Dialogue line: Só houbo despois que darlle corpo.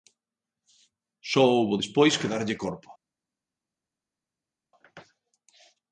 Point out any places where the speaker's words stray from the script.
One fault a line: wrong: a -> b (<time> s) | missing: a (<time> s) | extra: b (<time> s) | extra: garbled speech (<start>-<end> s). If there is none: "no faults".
no faults